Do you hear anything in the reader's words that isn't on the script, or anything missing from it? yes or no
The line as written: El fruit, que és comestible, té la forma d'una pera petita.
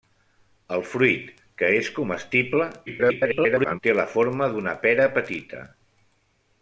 yes